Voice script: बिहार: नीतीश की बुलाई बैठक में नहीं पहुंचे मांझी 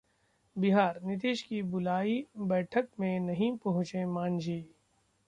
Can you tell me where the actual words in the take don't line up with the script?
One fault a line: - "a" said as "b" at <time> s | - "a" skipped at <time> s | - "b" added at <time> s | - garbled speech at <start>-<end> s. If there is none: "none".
none